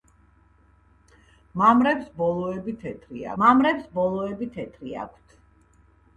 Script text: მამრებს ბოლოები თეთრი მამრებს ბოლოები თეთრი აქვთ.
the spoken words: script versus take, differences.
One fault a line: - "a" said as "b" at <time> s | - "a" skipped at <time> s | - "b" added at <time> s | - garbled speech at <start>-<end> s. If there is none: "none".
none